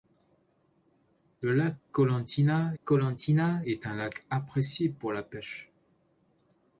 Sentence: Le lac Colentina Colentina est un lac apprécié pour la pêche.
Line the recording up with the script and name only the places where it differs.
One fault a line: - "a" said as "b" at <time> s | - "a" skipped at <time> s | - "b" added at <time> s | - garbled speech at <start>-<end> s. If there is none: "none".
none